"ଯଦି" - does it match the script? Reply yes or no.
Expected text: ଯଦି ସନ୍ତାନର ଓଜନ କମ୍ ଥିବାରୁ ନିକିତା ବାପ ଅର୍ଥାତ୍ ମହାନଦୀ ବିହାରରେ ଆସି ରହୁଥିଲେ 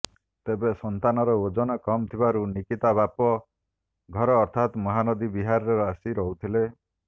no